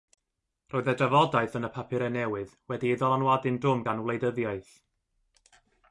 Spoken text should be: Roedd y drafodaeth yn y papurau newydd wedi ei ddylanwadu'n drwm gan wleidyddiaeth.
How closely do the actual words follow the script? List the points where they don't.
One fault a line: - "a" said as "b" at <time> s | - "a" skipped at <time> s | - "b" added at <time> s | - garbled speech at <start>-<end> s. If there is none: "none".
none